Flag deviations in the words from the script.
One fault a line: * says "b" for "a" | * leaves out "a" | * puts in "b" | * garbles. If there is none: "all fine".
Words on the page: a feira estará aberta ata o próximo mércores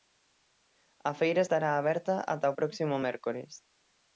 all fine